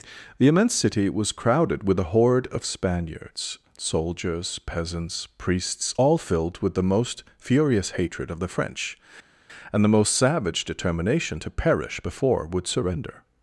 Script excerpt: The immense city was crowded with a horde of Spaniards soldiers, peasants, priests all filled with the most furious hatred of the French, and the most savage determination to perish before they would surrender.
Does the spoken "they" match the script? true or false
false